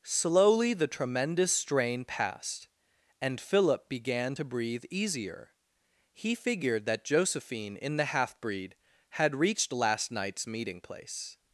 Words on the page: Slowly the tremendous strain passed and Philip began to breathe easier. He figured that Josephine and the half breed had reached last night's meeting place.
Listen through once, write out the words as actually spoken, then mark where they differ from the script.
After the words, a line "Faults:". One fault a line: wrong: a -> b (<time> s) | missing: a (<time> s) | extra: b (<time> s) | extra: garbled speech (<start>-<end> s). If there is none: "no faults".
Slowly the tremendous strain passed and Philip began to breathe easier. He figured that Josephine in the half breed had reached last night's meeting place.
Faults:
wrong: and -> in (7.8 s)